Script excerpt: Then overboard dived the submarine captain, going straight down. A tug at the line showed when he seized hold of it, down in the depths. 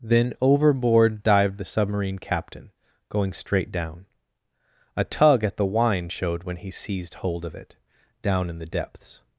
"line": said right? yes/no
no